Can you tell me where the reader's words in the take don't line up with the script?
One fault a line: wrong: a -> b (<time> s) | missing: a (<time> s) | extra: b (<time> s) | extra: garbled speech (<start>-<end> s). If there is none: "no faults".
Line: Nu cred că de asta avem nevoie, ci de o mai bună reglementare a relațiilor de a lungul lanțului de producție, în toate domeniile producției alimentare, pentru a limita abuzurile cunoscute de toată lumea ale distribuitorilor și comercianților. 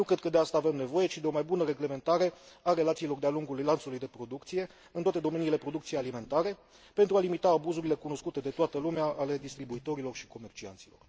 no faults